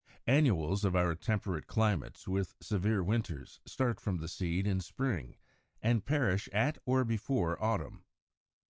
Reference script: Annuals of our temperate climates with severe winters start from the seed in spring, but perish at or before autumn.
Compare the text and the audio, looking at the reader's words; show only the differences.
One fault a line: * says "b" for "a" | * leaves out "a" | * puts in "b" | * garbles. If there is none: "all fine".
* says "and" for "but"